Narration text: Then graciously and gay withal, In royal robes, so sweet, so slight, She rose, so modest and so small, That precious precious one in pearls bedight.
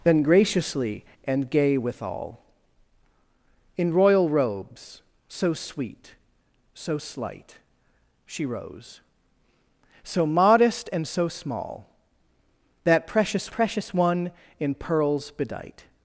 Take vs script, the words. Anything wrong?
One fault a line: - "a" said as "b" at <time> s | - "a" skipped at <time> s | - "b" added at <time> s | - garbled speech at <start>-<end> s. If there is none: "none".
none